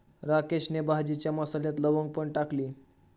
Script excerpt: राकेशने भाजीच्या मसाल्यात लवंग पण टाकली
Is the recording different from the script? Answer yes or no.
no